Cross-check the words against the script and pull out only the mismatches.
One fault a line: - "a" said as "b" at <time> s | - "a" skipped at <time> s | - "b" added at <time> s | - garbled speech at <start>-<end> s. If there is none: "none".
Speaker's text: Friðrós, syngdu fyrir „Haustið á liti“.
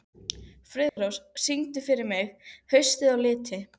- "mig" added at 2.1 s